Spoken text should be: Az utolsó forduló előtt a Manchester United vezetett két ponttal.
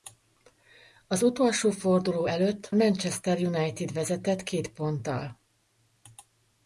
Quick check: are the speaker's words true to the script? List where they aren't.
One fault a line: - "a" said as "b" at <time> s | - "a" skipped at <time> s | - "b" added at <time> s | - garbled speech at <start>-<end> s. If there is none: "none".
none